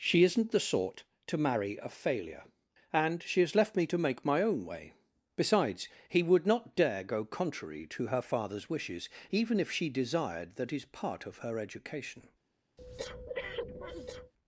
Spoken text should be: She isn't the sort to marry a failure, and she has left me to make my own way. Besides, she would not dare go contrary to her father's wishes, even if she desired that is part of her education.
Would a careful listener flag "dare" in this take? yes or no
no